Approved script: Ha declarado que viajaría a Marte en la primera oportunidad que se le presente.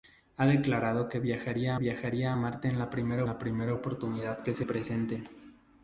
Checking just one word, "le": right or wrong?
wrong